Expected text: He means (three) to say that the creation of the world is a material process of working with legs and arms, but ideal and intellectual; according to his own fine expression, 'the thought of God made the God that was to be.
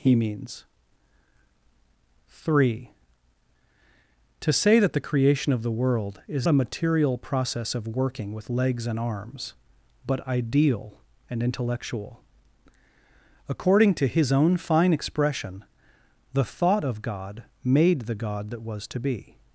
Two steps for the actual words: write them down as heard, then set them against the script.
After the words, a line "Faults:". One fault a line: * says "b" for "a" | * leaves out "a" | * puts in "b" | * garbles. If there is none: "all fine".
He means (three) to say that the creation of the world is a material process of working with legs and arms, but ideal and intellectual; according to his own fine expression, 'the thought of God made the God that was to be.
Faults:
all fine